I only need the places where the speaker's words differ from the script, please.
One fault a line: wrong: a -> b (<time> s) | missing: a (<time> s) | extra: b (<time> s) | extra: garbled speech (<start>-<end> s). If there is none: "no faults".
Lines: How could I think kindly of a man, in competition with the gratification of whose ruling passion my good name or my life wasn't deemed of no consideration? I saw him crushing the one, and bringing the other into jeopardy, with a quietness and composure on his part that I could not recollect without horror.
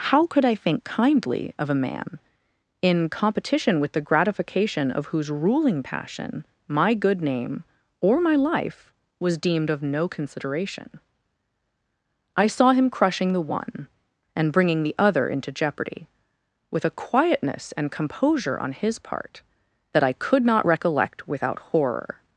wrong: wasn't -> was (9.2 s)